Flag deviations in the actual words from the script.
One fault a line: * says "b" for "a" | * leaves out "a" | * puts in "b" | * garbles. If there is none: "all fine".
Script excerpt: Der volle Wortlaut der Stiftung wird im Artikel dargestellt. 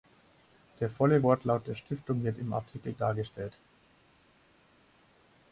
all fine